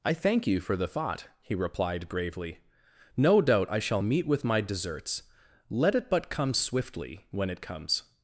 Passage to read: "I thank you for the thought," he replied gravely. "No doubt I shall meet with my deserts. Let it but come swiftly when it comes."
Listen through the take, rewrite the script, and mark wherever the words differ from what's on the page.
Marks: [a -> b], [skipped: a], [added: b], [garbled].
"I thank you for the thought," he replied gravely. "No doubt I shall meet with my deserts. Let it but come swiftly when it comes."